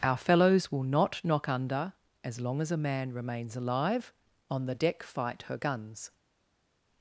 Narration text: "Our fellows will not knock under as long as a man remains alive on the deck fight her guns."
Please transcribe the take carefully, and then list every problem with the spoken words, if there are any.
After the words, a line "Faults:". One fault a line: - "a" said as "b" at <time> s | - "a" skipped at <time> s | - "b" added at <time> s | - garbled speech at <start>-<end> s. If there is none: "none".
"Our fellows will not knock under as long as a man remains alive on the deck fight her guns."
Faults:
none